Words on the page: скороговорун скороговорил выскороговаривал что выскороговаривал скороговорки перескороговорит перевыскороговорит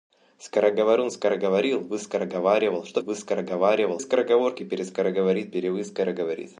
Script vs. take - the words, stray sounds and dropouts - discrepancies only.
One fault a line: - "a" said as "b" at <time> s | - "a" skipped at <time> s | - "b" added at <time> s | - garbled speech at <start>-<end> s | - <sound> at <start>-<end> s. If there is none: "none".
none